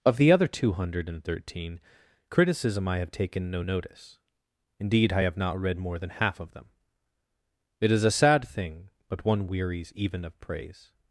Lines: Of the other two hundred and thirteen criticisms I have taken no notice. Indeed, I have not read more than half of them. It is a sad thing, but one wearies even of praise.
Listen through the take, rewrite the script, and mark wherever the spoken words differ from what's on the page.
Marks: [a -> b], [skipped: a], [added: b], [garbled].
Of the other two hundred and thirteen [criticisms -> criticism] I have taken no notice. Indeed, I have not read more than half of them. It is a sad thing, but one wearies even of praise.